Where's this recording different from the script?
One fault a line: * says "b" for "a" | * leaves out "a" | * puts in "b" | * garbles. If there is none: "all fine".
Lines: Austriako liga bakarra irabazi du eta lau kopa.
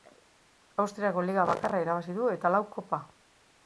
all fine